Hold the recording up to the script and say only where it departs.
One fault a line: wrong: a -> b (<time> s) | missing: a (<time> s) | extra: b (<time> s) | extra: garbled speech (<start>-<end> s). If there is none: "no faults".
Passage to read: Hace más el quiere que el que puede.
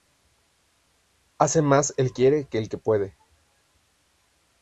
no faults